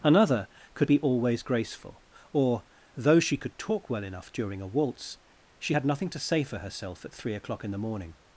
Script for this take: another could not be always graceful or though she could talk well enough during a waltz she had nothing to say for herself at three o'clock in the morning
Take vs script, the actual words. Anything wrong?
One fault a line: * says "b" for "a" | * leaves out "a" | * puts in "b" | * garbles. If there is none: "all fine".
* leaves out "not"